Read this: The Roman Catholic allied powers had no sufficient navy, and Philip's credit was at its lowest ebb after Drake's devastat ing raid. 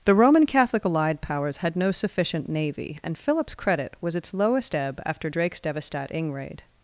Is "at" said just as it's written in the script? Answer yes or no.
no